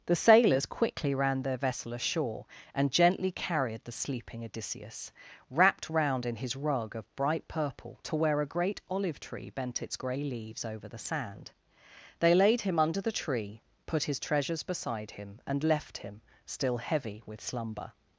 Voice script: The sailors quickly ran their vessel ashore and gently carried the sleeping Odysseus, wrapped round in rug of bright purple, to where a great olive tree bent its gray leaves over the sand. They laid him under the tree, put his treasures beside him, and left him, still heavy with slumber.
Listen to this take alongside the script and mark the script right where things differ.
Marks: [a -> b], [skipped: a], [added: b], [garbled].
The sailors quickly ran their vessel ashore and gently carried the sleeping Odysseus, wrapped round in [added: his] rug of bright purple, to where a great olive tree bent its gray leaves over the sand. They laid him under the tree, put his treasures beside him, and left him, still heavy with slumber.